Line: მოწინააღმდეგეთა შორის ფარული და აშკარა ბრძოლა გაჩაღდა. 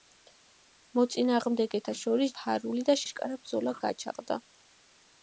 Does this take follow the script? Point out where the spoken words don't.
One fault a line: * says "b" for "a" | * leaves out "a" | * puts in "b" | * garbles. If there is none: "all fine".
all fine